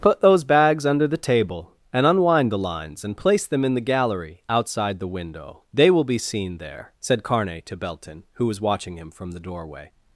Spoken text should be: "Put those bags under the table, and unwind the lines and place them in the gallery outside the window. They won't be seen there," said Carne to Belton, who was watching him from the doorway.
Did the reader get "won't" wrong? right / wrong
wrong